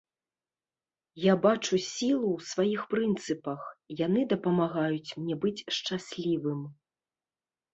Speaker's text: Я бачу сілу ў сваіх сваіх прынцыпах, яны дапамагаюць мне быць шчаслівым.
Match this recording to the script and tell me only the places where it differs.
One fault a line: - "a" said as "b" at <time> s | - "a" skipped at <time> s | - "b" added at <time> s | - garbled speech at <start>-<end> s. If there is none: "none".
- "сваіх" skipped at 2.8 s